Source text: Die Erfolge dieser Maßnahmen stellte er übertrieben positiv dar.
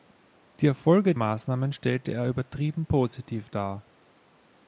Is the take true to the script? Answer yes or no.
no